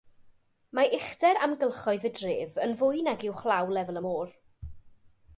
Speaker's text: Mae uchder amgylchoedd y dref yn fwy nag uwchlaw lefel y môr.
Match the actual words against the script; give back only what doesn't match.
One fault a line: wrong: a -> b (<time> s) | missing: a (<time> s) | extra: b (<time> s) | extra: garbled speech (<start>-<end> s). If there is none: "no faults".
no faults